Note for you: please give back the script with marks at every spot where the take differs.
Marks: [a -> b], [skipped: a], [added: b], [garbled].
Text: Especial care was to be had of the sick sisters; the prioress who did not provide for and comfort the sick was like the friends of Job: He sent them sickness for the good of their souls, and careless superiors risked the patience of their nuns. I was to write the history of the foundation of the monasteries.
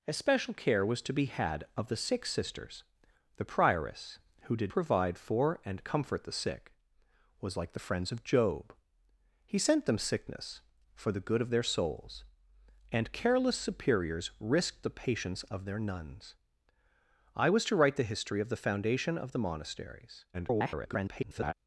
Especial care was to be had of the sick sisters; the prioress who did [skipped: not] provide for and comfort the sick was like the friends of Job: He sent them sickness for the good of their souls, and careless superiors risked the patience of their nuns. I was to write the history of the foundation of the monasteries. [garbled]